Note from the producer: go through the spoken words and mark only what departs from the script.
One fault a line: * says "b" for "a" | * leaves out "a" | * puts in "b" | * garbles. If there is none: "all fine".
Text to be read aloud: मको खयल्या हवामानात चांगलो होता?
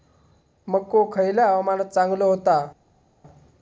all fine